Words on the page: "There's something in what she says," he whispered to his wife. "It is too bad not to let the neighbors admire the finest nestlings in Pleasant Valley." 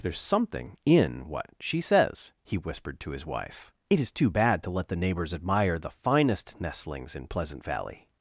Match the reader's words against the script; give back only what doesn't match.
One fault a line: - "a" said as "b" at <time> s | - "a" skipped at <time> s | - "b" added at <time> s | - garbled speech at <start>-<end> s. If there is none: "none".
- "not" skipped at 4.6 s